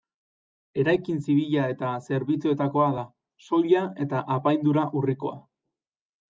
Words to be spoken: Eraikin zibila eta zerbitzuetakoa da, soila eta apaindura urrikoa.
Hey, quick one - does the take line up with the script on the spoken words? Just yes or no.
yes